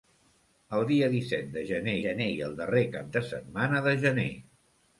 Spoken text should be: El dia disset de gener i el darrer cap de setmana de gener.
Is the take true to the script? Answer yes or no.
no